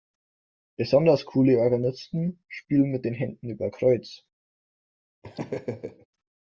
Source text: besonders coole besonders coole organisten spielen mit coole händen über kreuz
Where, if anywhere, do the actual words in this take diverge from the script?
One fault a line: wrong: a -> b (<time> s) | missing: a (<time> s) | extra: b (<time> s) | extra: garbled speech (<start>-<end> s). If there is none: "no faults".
missing: besonders coole (1.6 s)
wrong: coole -> den (3.0 s)